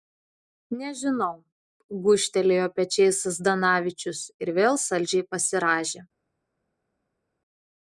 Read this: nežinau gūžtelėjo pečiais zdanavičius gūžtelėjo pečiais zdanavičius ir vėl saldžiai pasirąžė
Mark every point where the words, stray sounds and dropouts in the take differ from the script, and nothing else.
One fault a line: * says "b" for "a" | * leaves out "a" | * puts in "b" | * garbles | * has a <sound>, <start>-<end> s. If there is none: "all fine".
* leaves out "gūžtelėjo pečiais zdanavičius"